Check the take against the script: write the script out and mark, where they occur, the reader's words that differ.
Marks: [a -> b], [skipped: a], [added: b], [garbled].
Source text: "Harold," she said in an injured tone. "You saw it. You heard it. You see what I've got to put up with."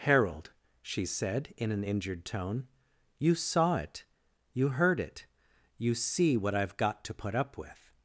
"Harold," she said in an injured tone. "You saw it. You heard it. You see what I've got to put up with."